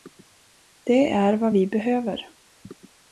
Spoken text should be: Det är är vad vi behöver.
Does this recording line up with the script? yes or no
no